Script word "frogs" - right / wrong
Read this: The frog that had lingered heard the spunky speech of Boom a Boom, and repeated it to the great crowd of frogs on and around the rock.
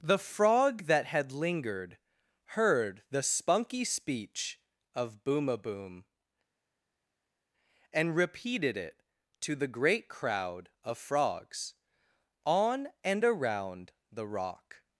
right